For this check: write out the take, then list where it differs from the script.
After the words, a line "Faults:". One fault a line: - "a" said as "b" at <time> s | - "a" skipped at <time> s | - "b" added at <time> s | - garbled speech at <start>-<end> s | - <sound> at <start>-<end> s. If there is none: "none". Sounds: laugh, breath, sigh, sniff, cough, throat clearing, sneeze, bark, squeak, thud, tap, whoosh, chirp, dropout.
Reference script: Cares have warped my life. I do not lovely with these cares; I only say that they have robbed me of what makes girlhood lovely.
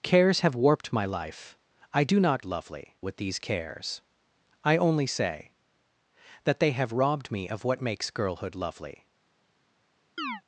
Cares have warped my life. I do not lovely with these cares; I only say that they have robbed me of what makes girlhood lovely.
Faults:
- chirp at 10.2-10.4 s